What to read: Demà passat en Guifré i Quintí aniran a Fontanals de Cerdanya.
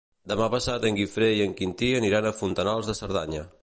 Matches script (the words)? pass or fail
fail